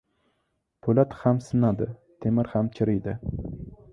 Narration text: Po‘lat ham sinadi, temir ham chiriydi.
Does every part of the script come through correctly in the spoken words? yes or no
yes